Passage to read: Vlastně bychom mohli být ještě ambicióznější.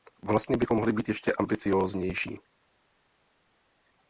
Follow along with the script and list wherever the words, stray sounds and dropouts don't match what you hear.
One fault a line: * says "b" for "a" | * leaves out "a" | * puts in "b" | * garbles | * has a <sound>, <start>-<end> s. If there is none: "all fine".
all fine